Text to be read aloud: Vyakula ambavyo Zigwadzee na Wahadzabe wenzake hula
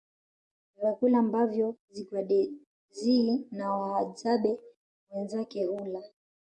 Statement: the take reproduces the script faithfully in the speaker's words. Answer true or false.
true